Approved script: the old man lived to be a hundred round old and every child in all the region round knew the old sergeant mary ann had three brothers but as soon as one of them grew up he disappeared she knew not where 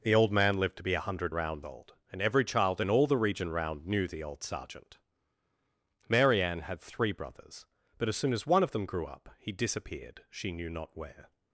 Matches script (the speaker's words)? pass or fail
pass